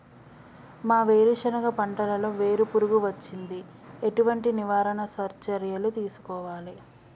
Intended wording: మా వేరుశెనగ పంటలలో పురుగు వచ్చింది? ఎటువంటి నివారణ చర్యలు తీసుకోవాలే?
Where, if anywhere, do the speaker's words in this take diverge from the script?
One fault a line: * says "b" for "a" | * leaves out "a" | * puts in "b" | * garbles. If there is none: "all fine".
* puts in "వేరు"